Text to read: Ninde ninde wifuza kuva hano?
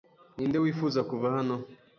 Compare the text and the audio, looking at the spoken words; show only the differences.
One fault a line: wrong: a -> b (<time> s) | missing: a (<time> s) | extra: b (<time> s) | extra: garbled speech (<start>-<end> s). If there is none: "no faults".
missing: ninde (0.6 s)